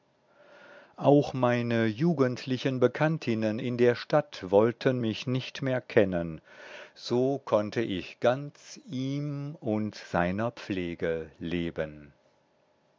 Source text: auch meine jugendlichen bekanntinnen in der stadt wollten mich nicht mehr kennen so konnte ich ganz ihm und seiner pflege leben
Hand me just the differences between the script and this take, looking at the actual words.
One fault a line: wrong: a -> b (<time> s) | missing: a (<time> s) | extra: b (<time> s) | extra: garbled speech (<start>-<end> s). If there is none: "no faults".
no faults